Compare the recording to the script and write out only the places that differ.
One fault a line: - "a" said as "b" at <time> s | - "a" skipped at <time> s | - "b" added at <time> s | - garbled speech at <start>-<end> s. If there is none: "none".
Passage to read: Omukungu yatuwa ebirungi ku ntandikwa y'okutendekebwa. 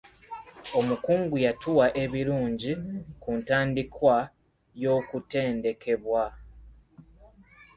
none